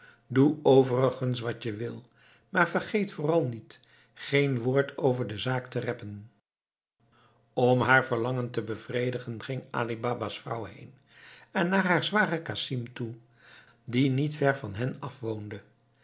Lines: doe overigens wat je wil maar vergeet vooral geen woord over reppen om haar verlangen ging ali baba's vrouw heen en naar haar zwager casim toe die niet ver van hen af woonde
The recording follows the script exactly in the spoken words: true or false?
false